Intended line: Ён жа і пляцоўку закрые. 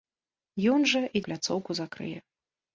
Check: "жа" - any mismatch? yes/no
no